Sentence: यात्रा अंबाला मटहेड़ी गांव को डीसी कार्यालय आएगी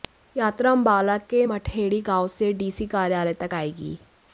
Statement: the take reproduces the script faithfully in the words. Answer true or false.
false